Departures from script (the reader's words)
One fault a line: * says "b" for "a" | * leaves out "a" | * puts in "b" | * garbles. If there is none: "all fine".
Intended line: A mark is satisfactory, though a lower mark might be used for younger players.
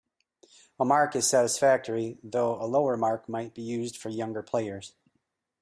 all fine